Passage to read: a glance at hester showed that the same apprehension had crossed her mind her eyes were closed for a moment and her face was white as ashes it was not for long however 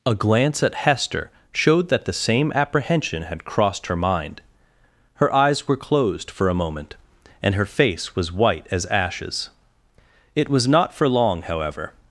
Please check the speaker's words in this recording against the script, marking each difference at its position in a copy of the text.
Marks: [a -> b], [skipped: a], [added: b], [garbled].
a glance at hester showed that the same apprehension had crossed her mind her eyes were closed for a moment and her face was white as ashes it was not for long however